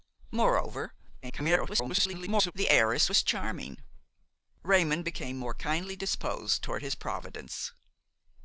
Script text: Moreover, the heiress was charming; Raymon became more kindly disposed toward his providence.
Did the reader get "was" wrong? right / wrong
right